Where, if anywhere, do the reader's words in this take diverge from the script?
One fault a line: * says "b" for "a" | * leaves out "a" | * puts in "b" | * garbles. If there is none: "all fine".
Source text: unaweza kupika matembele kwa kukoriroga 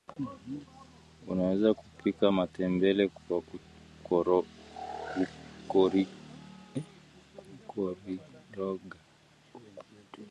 all fine